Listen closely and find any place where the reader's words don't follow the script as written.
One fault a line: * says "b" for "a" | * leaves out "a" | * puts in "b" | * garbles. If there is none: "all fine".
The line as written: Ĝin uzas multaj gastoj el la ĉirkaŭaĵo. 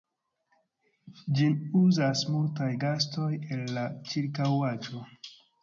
all fine